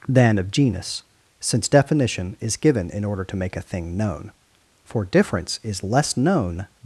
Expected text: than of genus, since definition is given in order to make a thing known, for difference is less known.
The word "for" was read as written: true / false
true